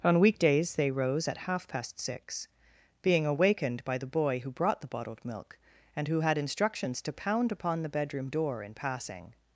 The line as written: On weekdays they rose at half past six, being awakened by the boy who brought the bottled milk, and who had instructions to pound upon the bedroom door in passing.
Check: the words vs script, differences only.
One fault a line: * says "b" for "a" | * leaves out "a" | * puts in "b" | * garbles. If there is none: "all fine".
all fine